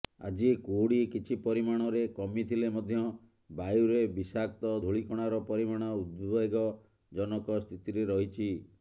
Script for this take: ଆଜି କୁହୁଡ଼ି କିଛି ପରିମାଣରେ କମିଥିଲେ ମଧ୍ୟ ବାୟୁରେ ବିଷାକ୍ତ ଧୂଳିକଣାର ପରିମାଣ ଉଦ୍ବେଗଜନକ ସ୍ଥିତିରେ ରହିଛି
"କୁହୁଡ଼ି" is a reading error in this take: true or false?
false